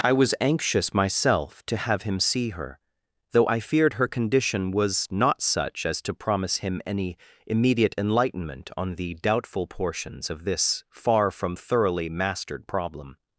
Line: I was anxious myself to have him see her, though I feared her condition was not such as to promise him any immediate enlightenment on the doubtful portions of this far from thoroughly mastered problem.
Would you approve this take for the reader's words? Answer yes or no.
yes